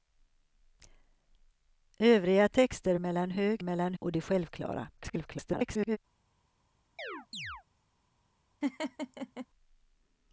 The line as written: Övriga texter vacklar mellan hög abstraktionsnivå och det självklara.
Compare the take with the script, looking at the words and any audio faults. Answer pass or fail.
fail